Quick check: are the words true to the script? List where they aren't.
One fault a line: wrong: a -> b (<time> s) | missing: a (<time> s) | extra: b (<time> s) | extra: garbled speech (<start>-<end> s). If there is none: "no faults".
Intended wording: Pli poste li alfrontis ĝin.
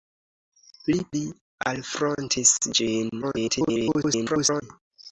missing: poste (0.9 s)
extra: garbled speech (3.2-4.6 s)